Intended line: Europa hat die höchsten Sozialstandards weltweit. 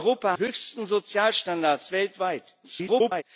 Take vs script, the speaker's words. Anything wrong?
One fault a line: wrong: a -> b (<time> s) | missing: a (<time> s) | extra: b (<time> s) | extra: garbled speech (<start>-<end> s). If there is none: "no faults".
missing: hat die (0.4 s)
extra: garbled speech (2.6-3.2 s)